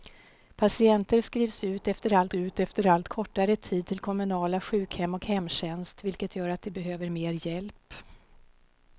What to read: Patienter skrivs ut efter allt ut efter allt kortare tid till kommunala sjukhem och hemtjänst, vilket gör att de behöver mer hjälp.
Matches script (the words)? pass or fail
pass